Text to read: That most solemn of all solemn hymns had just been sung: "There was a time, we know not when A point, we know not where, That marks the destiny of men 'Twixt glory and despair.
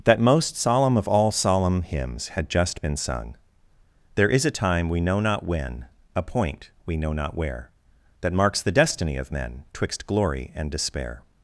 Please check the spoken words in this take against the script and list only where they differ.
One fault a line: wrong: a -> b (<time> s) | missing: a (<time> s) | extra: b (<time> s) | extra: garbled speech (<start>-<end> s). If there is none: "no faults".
wrong: was -> is (4.3 s)